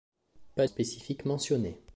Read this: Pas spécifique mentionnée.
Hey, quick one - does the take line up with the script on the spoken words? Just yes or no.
yes